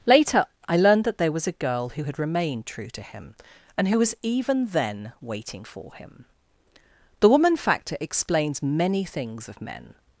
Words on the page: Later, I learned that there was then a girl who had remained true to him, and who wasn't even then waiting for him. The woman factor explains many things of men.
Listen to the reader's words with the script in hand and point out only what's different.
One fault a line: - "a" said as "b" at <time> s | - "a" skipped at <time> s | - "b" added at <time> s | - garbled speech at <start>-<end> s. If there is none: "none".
- "then" skipped at 1.5 s
- "wasn't" said as "was" at 4.0 s